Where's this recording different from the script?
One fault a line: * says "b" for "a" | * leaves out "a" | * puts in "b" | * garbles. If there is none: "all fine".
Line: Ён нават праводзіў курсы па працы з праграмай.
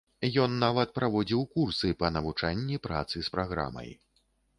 * puts in "навучанні"